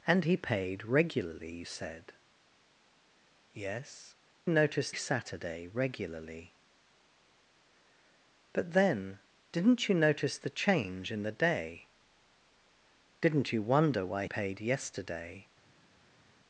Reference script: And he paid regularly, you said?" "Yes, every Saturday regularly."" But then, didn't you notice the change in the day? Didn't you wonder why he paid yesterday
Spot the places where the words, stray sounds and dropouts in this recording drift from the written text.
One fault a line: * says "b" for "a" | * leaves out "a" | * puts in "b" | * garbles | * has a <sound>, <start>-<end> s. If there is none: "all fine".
* says "notice" for "every"
* leaves out "he"